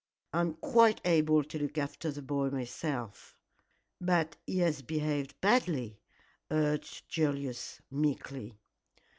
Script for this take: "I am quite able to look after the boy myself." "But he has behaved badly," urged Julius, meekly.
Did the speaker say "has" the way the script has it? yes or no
yes